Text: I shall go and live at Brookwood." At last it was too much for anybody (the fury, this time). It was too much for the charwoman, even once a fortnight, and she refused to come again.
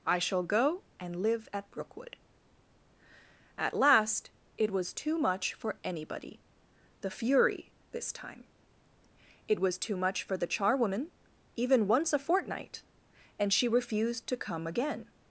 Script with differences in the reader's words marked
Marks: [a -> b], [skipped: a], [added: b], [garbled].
I shall go and live at Brookwood." At last it was too much for anybody (the fury, this time). It was too much for the charwoman, even once a fortnight, and she refused to come again.